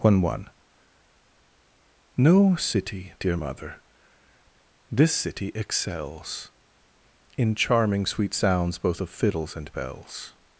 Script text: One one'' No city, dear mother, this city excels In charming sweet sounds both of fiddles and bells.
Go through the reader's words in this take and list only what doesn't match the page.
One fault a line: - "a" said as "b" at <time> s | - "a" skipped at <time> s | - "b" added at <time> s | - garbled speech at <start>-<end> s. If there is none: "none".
none